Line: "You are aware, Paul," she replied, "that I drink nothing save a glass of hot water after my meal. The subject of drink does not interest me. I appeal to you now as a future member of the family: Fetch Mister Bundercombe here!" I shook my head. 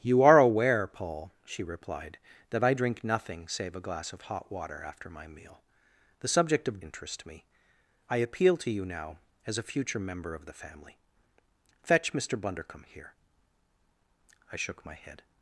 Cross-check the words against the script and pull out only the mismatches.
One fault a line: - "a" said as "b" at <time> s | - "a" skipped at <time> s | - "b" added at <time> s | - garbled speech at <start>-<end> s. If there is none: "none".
- "drink does not" skipped at 6.8 s